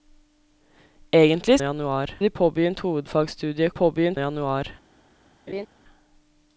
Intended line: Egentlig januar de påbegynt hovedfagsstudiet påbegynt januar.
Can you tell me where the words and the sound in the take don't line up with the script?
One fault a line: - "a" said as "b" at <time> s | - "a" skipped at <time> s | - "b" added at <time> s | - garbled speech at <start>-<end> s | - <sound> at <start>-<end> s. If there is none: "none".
- laugh at 5.5-5.7 s